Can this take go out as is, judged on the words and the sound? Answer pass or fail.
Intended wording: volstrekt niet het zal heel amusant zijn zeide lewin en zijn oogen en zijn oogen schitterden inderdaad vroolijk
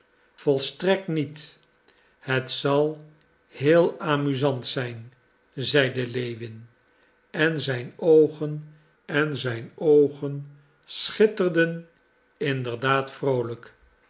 pass